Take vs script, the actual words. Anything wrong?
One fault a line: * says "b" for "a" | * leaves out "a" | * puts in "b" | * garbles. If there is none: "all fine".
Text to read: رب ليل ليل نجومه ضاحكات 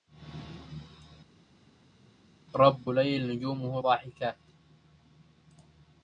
* leaves out "ليل"